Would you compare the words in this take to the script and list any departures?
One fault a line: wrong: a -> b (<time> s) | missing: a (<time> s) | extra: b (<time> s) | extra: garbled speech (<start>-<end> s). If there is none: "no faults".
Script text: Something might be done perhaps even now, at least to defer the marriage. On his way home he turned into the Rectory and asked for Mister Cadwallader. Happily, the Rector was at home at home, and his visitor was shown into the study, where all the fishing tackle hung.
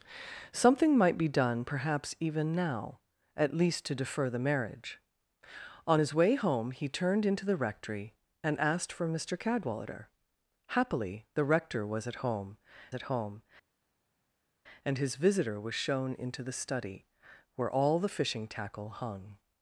no faults